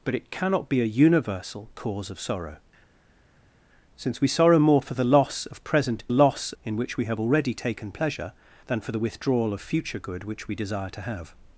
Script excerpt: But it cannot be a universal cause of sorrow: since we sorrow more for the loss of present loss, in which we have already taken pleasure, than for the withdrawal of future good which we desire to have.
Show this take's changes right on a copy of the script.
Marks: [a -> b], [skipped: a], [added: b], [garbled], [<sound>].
But it cannot be a universal cause of sorrow: since we sorrow more for the loss of present loss, in which we have already taken pleasure, than for the withdrawal of future good which we desire to have.